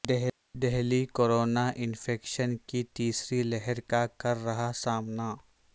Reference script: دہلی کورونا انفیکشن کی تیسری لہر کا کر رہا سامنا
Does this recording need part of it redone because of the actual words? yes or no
no